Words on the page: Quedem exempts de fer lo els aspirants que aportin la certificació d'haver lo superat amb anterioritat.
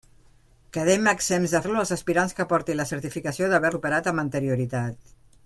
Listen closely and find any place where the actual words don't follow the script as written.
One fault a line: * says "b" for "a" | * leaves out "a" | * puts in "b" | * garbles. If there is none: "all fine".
* leaves out "fer"
* leaves out "lo"